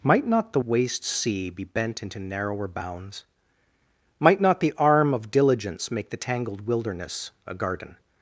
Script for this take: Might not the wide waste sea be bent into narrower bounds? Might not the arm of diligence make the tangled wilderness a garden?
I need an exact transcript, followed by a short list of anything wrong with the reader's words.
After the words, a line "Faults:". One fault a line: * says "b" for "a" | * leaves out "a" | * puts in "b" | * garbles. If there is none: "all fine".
Might not the waste sea be bent into narrower bounds? Might not the arm of diligence make the tangled wilderness a garden?
Faults:
* leaves out "wide"